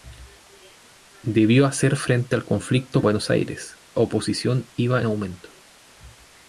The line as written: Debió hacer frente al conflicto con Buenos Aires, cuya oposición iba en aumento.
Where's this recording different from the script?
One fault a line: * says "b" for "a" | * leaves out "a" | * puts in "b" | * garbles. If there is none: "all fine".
* leaves out "con"
* leaves out "cuya"
* leaves out "en"